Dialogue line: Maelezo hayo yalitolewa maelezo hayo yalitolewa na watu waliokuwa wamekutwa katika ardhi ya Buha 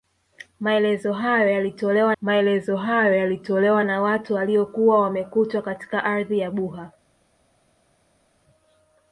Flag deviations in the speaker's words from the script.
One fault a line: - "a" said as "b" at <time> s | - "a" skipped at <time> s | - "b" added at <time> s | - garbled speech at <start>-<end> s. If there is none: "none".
none